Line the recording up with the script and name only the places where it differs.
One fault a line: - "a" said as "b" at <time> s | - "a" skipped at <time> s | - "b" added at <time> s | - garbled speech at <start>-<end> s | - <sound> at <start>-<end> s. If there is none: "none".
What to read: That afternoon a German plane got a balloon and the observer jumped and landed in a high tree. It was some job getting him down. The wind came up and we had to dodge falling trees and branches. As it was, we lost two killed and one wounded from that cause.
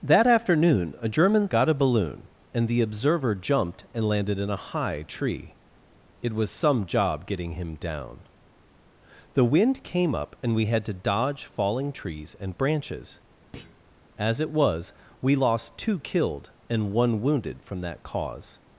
- "plane" skipped at 1.5 s
- thud at 13.5-13.8 s